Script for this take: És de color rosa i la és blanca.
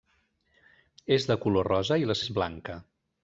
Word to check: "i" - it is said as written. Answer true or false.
true